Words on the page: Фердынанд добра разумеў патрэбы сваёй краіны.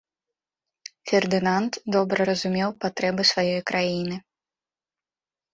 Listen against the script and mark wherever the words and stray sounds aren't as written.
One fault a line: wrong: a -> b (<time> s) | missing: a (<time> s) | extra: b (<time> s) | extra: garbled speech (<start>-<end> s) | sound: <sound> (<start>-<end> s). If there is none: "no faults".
no faults